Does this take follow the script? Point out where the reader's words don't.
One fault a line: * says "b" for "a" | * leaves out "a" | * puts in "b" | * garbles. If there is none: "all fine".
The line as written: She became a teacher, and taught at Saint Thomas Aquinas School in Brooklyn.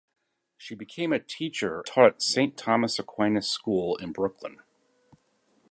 * leaves out "and"